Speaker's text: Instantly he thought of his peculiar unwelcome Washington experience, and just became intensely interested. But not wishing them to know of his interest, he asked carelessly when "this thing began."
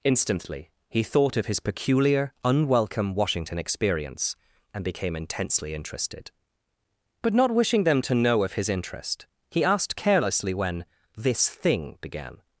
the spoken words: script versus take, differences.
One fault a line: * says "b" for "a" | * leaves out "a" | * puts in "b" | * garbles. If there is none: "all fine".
* leaves out "just"